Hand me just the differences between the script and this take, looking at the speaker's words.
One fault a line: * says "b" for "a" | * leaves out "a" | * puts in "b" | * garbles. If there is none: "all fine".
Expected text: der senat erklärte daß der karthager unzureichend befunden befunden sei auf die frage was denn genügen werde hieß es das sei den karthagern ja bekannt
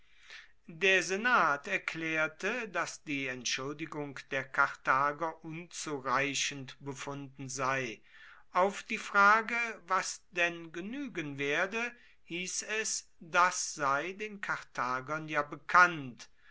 * puts in "die entschuldigung"
* leaves out "befunden"